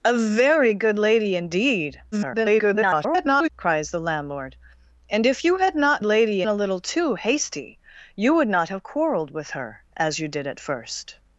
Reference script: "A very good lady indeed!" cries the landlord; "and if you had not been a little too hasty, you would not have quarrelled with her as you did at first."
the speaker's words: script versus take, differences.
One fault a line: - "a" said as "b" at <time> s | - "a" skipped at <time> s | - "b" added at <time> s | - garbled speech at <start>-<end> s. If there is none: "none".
- garbled speech at 2.1-3.5 s
- "been" said as "lady" at 6.0 s